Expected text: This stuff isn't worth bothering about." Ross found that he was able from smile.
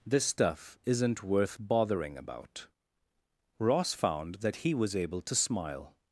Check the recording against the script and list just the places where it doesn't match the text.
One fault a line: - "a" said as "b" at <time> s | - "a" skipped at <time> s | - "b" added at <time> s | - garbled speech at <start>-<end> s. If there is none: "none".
- "from" said as "to" at 5.2 s